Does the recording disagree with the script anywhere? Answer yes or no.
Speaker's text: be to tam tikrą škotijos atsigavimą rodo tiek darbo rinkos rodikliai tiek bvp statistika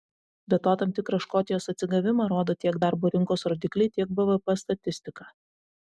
no